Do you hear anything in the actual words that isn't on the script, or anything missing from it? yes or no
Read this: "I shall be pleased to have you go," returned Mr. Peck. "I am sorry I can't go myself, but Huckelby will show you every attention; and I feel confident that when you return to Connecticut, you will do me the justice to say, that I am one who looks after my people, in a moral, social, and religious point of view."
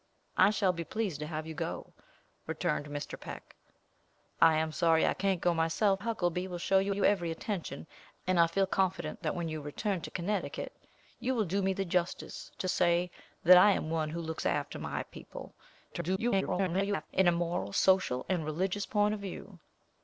yes